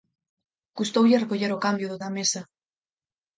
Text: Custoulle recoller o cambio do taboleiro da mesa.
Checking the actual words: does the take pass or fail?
fail